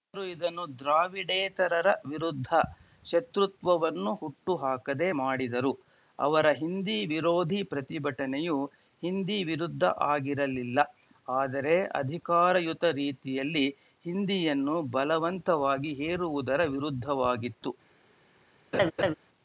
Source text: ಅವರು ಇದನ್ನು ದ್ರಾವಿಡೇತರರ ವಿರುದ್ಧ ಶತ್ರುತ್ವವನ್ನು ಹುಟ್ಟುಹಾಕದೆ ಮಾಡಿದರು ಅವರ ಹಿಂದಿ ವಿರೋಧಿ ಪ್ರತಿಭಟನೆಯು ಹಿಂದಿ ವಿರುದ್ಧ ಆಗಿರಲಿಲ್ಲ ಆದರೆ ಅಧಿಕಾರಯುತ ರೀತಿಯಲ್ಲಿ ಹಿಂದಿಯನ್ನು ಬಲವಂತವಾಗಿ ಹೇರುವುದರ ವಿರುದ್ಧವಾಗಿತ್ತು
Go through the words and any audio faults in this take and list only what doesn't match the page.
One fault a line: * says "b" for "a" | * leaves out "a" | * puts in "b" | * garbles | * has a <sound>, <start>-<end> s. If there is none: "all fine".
* has a laugh, 18.7-19.1 s